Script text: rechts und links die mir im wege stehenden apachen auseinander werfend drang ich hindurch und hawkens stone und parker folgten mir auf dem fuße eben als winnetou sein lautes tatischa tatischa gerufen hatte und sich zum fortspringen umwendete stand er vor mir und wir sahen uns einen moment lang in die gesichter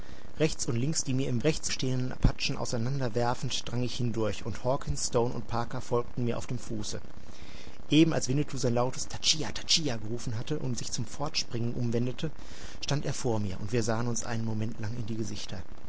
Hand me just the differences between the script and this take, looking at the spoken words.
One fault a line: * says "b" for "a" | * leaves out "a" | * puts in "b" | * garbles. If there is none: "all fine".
* says "rechts" for "wege"